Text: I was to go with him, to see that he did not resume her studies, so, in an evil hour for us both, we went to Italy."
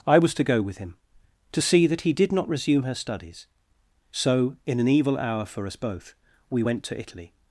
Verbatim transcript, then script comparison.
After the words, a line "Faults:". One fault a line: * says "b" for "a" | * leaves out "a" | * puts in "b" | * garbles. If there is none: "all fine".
I was to go with him, to see that he did not resume her studies, so, in an evil hour for us both, we went to Italy."
Faults:
all fine